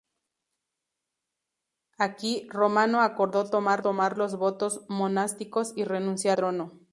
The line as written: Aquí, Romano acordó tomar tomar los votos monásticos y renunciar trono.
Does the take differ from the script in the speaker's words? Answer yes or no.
no